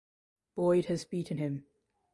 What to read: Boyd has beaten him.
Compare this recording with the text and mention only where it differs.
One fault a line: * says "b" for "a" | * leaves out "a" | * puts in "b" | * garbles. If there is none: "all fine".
all fine